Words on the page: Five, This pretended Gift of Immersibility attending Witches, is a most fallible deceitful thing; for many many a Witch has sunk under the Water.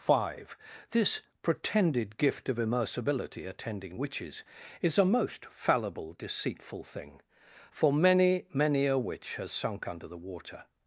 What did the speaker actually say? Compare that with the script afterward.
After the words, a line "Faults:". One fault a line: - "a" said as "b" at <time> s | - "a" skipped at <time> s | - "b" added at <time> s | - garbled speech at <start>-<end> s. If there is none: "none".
Five, This pretended Gift of Immersibility attending Witches, is a most fallible deceitful thing; for many many a Witch has sunk under the Water.
Faults:
none